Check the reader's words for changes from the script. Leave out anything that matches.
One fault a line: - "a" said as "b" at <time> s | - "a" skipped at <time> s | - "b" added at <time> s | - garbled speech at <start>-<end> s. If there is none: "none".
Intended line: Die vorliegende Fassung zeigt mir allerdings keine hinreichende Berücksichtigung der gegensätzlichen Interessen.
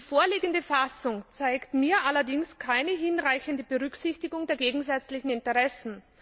none